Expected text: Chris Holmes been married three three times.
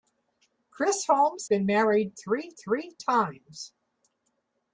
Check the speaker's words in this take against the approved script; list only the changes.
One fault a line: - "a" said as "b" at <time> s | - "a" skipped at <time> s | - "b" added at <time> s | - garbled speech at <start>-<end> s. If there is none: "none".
none